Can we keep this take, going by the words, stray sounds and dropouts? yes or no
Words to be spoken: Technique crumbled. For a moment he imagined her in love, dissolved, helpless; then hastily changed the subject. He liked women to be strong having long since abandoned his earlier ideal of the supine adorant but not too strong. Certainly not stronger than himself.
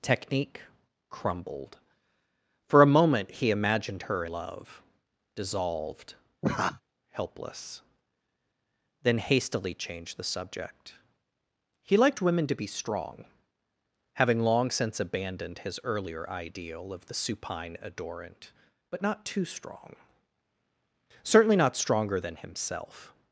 no